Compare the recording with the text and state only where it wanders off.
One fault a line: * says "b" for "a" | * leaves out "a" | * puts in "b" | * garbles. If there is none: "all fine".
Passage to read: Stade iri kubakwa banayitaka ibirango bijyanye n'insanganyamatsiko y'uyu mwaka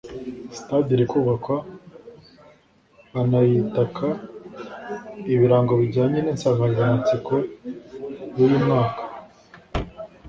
all fine